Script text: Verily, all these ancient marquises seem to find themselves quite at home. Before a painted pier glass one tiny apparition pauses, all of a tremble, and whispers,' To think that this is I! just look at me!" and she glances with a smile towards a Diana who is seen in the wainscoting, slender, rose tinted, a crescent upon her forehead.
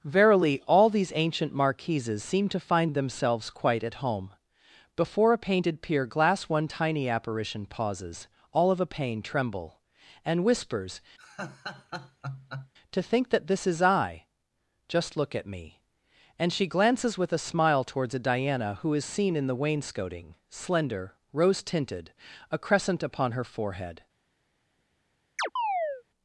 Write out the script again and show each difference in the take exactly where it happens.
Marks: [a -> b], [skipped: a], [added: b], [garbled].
Verily, all these ancient marquises seem to find themselves quite at home. Before a painted pier glass one tiny apparition pauses, all of a [added: pain] tremble, and whispers,' To think that this is I! just look at me!" and she glances with a smile towards a Diana who is seen in the wainscoting, slender, rose tinted, a crescent upon her forehead.